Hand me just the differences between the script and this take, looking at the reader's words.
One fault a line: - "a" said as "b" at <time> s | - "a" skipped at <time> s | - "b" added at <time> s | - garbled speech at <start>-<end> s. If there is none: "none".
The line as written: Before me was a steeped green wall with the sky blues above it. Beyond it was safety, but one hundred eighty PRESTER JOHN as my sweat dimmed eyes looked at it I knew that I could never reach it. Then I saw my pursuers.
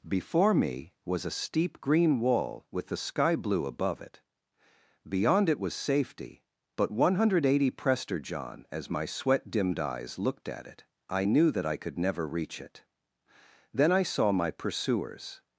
- "steeped" said as "steep" at 1.4 s
- "blues" said as "blue" at 3.4 s